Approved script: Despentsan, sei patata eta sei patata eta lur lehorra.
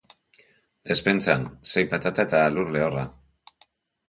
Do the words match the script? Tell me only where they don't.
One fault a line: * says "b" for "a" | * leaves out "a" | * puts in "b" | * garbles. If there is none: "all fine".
* leaves out "sei patata eta"